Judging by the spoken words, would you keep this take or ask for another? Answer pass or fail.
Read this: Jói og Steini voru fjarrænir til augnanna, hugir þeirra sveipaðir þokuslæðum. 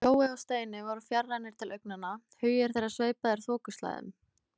pass